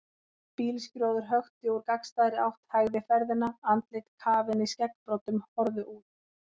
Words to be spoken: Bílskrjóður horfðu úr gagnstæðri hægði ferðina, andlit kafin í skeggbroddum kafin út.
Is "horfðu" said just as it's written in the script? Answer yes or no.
no